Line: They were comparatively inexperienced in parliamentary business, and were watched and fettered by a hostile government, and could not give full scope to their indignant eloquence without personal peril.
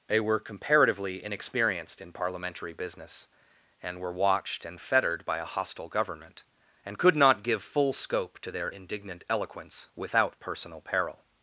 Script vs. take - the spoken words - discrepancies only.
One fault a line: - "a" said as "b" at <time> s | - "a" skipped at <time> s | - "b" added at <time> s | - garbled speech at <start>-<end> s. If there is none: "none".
none